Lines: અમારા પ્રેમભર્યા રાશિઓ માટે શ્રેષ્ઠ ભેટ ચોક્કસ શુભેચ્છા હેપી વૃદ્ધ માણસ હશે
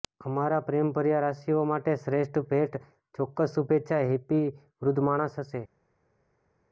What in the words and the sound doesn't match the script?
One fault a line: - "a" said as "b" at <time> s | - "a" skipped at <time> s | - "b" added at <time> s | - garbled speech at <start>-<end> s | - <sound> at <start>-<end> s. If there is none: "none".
none